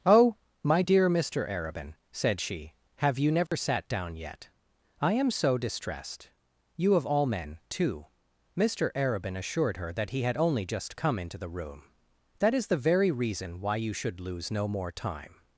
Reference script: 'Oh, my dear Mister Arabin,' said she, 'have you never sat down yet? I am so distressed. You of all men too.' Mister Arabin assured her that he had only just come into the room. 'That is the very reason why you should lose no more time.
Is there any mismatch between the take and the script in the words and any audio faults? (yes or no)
yes